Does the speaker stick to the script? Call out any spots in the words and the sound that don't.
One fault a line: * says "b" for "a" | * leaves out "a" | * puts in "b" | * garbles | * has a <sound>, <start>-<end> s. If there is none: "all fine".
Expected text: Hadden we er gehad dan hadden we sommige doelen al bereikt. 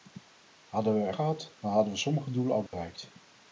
* has a dropout, 2.7-2.7 s